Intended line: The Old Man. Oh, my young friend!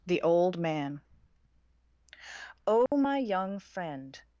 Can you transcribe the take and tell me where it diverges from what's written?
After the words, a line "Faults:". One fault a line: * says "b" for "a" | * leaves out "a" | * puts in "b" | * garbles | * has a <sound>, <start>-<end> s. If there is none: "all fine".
The Old Man. Oh, my young friend!
Faults:
* has a dropout, 2.9-2.9 s